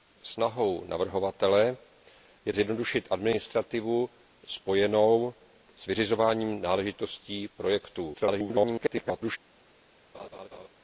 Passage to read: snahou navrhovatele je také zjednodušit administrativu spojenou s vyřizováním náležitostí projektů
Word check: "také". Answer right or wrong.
wrong